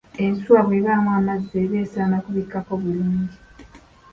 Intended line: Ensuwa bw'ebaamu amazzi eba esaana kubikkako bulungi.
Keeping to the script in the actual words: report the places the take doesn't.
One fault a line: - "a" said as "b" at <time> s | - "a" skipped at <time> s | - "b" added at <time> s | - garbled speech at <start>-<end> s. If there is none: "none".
none